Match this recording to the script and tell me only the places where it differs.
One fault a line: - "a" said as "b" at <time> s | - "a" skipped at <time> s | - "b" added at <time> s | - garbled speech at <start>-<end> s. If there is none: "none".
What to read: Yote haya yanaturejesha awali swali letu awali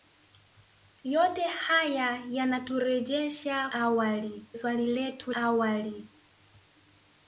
none